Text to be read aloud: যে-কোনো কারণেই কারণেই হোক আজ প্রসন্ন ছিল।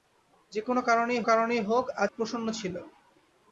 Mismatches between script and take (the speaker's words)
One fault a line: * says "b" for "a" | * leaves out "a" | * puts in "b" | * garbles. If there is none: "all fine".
all fine